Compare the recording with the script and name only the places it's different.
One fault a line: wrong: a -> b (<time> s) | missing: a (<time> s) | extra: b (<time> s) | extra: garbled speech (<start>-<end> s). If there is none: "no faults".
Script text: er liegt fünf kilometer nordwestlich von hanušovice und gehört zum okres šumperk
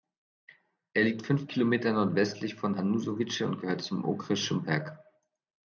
no faults